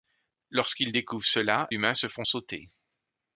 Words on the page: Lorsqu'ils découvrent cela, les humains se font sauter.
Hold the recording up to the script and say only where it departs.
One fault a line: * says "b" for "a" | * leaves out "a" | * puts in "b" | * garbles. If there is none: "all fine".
* leaves out "les"